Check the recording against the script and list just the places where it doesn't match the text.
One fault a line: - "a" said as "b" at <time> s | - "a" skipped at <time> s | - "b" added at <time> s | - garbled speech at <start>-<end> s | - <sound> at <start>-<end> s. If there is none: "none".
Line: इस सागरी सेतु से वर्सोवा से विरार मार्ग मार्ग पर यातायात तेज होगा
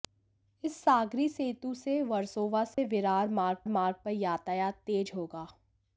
- dropout at 2.7-2.8 s